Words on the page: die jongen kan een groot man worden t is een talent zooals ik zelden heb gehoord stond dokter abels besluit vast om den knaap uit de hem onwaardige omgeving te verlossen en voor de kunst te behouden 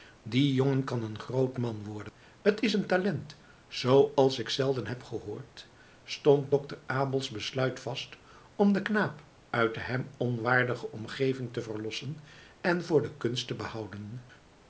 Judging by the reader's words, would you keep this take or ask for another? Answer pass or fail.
pass